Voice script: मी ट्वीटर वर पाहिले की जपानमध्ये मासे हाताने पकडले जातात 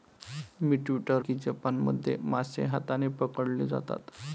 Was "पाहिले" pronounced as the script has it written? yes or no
no